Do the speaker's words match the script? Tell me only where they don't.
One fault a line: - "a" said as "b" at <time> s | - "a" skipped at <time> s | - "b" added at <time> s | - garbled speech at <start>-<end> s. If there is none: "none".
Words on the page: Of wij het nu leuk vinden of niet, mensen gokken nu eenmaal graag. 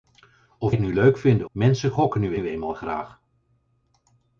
- "wij" skipped at 0.8 s
- "of niet" skipped at 1.5 s
- "nu" added at 2.3 s